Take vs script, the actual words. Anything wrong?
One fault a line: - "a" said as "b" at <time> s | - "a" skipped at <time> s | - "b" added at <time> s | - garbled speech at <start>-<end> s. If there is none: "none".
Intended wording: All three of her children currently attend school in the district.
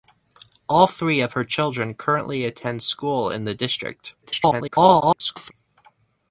- garbled speech at 4.2-5.5 s